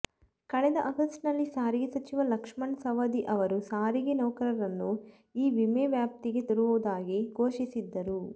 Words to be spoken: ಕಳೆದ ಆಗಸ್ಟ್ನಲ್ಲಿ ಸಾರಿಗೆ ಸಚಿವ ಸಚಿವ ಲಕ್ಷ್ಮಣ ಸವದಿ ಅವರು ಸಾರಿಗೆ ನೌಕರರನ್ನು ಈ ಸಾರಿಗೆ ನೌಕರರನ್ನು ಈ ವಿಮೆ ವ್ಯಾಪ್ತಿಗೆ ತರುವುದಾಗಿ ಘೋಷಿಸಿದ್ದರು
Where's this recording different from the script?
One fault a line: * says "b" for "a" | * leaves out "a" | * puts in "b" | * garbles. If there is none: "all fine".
* leaves out "ಸಚಿವ"
* leaves out "ಸಾರಿಗೆ ನೌಕರರನ್ನು ಈ"